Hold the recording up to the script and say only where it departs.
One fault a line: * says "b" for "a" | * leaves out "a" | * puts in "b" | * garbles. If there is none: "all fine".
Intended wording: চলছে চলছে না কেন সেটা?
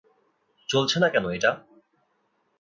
* leaves out "চলছে"
* says "এটা" for "সেটা"